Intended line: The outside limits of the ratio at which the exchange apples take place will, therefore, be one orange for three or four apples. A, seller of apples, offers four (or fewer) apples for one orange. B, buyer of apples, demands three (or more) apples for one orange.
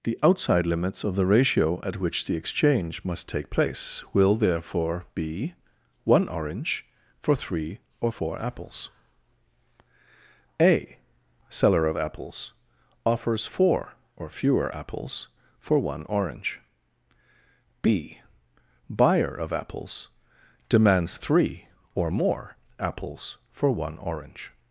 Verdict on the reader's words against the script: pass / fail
fail